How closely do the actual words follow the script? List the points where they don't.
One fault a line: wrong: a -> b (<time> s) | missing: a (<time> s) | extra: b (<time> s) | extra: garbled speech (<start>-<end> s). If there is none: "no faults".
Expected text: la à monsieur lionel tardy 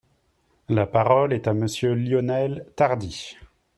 extra: parole est (0.9 s)